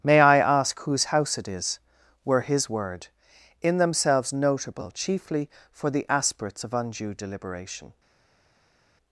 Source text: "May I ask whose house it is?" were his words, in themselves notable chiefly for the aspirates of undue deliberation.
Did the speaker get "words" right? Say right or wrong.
wrong